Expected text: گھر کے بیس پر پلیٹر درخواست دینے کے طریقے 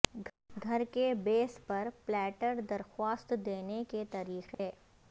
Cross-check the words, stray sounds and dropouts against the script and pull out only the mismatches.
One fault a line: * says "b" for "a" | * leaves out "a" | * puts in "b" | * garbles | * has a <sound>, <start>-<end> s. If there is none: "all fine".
* has a dropout, 4.5-4.6 s